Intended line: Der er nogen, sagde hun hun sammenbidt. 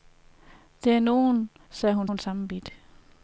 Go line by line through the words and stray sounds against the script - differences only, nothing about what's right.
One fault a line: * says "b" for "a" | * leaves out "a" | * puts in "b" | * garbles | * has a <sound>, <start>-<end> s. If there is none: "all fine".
all fine